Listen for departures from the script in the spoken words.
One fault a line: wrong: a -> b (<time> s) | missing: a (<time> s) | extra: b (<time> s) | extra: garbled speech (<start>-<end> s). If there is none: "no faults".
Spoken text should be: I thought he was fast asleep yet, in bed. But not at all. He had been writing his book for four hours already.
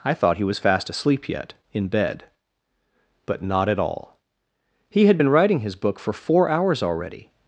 no faults